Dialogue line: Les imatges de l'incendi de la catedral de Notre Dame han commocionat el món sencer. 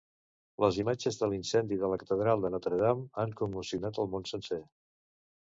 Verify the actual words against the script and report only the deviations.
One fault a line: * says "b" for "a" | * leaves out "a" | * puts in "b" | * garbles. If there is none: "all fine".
all fine